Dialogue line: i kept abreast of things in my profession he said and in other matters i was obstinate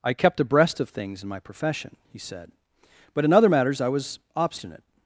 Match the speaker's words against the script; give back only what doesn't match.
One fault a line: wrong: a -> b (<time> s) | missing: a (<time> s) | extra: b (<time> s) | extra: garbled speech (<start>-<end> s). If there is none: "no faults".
wrong: and -> but (3.1 s)